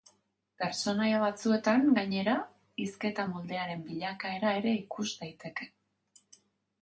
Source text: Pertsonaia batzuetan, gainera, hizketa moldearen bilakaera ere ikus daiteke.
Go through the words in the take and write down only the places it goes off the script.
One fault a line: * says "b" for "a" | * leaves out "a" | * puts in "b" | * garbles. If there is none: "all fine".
all fine